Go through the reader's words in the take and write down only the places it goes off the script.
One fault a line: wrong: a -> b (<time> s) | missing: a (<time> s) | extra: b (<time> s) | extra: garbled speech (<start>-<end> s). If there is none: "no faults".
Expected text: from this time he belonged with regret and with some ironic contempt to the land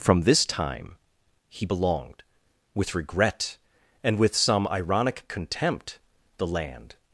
missing: to (6.0 s)